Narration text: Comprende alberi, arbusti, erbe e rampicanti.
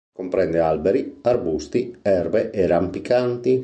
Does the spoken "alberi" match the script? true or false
true